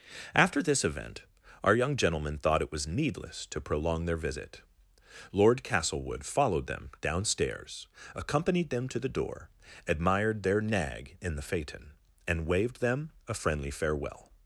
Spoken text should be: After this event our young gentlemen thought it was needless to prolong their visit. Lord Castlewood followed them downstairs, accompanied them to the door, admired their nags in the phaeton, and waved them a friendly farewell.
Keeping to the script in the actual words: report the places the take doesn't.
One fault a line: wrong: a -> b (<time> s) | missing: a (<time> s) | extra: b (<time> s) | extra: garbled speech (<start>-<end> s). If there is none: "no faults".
wrong: nags -> nag (10.6 s)